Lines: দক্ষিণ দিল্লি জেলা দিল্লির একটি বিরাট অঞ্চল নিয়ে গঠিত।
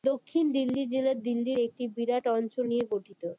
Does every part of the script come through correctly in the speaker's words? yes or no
yes